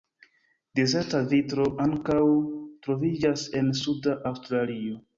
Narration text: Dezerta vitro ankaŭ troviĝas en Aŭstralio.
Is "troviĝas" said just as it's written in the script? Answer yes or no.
yes